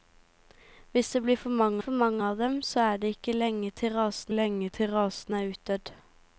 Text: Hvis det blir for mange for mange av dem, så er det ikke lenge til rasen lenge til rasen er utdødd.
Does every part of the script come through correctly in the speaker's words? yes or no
yes